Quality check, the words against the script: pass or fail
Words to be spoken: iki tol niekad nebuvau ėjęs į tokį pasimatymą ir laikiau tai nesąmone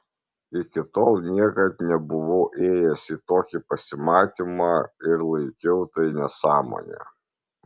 pass